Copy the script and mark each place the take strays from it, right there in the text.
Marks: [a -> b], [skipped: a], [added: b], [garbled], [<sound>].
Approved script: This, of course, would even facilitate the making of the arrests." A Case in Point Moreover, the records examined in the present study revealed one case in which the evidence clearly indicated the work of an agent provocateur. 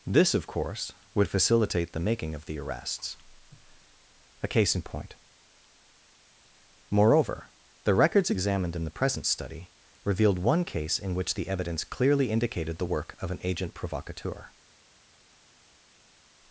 This, of course, would [skipped: even] facilitate the making of the arrests." A Case in Point Moreover, the records examined in the present study revealed one case in which the evidence clearly indicated the work of an agent provocateur.